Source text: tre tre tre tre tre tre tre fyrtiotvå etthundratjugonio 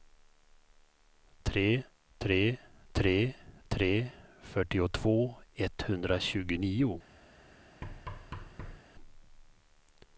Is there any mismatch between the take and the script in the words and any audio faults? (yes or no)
yes